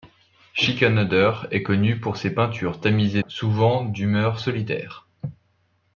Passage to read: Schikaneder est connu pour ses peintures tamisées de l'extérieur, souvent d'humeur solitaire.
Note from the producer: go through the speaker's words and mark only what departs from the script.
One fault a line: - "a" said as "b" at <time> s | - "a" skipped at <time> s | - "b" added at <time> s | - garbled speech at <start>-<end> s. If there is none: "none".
- "de l'extérieur" skipped at 3.2 s